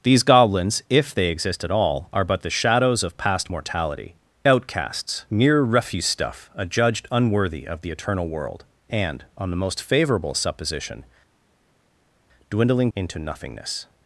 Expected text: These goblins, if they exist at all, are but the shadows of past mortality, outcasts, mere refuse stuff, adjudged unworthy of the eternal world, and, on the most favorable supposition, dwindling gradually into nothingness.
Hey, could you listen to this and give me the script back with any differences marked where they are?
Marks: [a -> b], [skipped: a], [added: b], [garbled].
These goblins, if they exist at all, are but the shadows of past mortality, outcasts, mere refuse stuff, adjudged unworthy of the eternal world, and, on the most favorable supposition, dwindling [skipped: gradually] into nothingness.